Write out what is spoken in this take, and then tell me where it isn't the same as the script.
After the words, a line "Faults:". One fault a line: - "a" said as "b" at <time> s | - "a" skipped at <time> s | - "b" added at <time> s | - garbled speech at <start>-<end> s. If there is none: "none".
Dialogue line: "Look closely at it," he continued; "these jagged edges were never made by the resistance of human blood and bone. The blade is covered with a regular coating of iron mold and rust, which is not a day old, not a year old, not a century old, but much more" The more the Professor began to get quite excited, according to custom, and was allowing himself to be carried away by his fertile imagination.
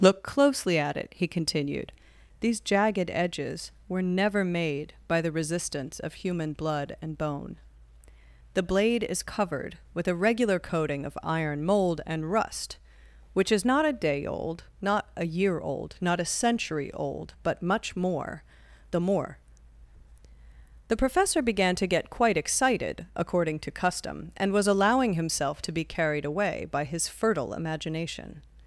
"Look closely at it," he continued; "these jagged edges were never made by the resistance of human blood and bone. The blade is covered with a regular coating of iron mold and rust, which is not a day old, not a year old, not a century old, but much more" The more the Professor began to get quite excited, according to custom, and was allowing himself to be carried away by his fertile imagination.
Faults:
none